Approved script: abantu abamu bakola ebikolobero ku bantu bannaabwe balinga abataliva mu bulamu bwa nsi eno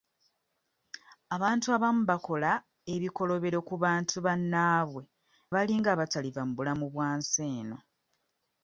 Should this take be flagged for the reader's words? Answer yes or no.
no